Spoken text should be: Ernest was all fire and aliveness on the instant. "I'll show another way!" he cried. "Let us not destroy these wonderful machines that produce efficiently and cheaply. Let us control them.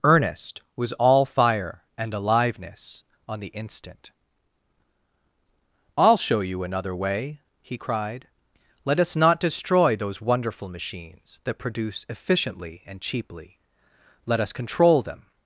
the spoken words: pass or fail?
fail